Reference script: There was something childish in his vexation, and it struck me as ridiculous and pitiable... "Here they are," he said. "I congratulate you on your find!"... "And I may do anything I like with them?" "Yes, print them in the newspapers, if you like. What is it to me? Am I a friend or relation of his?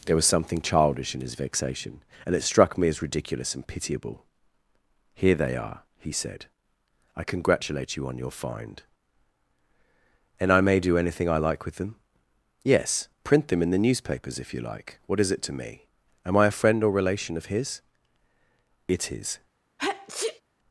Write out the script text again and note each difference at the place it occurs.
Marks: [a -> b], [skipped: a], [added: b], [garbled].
There was something childish in his vexation, and it struck me as ridiculous and pitiable... "Here they are," he said. "I congratulate you on your find!"... "And I may do anything I like with them?" "Yes, print them in the newspapers, if you like. What is it to me? Am I a friend or relation of his? [added: It is]